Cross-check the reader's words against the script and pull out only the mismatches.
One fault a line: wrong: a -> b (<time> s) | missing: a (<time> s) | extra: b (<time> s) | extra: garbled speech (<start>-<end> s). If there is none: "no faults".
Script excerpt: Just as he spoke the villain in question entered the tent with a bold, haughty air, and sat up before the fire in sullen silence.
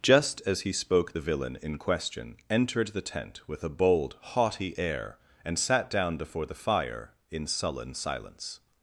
wrong: up -> down (5.9 s)